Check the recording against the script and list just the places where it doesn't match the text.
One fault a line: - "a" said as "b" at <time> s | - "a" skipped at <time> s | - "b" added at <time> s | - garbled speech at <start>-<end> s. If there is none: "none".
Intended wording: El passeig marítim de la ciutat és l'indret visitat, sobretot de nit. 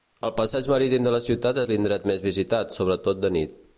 - "més" added at 2.1 s